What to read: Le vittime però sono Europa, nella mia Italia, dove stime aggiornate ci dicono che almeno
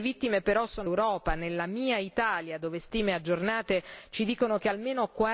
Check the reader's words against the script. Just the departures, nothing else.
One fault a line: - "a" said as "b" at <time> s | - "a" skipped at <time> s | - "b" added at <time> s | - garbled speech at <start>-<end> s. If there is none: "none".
none